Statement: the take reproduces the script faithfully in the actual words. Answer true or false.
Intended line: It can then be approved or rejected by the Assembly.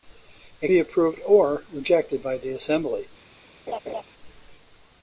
false